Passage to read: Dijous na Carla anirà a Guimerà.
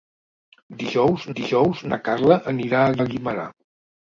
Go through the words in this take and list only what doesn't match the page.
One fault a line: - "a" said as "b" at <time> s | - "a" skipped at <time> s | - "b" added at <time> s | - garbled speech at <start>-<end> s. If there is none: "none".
- "dijous" added at 1.4 s
- "a" added at 3.0 s